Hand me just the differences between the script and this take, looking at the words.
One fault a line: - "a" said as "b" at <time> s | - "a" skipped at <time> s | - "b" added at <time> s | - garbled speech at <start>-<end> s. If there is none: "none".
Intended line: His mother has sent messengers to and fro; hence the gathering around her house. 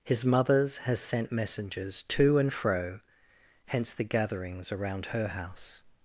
- "mother" said as "mothers" at 0.2 s
- "gathering" said as "gatherings" at 4.0 s